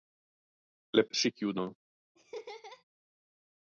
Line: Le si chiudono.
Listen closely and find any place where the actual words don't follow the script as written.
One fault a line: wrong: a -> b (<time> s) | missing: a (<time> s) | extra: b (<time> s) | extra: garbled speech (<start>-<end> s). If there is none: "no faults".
no faults